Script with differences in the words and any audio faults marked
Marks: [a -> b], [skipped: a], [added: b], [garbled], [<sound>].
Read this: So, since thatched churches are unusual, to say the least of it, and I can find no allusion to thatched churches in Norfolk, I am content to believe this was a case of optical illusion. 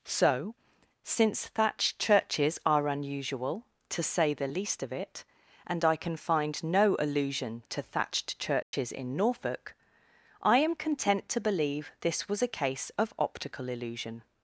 So, since thatched churches are unusual, to say the least of it, and I can find no allusion to thatched churches [dropout] in Norfolk, I am content to believe this was a case of optical illusion.